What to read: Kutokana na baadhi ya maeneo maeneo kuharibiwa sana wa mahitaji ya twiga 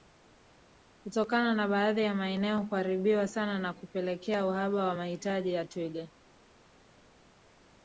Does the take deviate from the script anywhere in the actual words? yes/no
yes